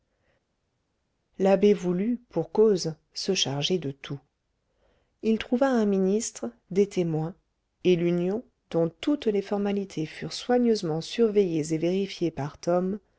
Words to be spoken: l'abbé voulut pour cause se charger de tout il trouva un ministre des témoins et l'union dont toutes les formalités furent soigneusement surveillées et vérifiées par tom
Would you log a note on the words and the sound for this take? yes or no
no